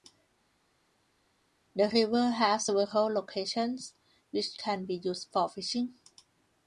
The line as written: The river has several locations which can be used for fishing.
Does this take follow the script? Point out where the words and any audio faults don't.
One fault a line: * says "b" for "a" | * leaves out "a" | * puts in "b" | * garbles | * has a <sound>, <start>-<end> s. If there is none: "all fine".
all fine